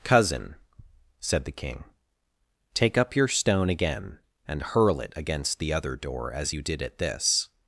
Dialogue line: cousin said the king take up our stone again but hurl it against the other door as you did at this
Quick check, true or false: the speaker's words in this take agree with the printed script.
false